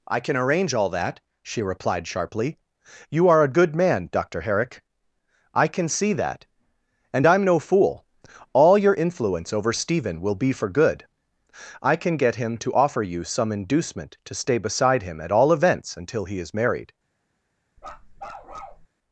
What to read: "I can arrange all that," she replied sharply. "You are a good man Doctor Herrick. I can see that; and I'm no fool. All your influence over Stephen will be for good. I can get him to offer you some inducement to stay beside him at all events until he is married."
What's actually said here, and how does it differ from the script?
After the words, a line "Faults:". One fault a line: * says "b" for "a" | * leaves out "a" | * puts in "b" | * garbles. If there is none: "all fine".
"I can arrange all that," she replied sharply. "You are a good man Doctor Herrick. I can see that; and I'm no fool. All your influence over Stephen will be for good. I can get him to offer you some inducement to stay beside him at all events until he is married."
Faults:
all fine